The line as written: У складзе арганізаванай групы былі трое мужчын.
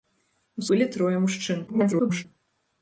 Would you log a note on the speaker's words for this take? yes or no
yes